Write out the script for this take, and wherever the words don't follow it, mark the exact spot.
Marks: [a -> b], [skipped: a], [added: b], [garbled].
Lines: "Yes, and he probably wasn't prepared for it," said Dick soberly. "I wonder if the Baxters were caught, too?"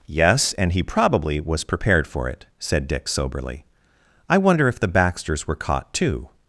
"Yes, and he probably [wasn't -> was] prepared for it," said Dick soberly. "I wonder if the Baxters were caught, too?"